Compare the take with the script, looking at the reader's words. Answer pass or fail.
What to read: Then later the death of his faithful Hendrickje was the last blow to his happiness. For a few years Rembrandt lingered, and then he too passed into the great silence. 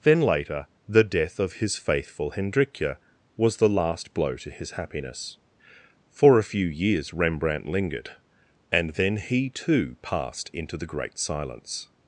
pass